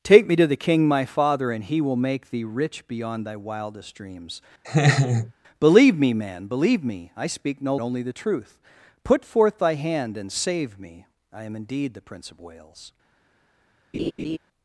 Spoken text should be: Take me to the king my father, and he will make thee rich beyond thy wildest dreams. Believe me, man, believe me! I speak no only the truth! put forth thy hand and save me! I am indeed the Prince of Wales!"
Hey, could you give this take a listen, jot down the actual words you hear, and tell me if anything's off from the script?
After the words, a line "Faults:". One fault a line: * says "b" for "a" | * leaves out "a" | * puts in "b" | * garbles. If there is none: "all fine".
Take me to the king my father, and he will make thee rich beyond thy wildest dreams. Believe me, man, believe me! I speak no only the truth! put forth thy hand and save me! I am indeed the Prince of Wales!"
Faults:
all fine